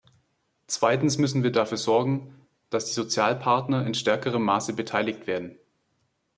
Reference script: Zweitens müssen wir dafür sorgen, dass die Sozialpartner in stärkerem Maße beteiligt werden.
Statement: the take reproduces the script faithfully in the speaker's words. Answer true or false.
true